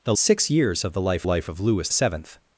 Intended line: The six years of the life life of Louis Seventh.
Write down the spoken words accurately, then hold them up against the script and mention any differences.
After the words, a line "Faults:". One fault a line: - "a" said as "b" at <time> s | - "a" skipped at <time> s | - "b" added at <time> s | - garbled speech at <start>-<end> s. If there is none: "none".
The six years of the life life of Louis Seventh.
Faults:
none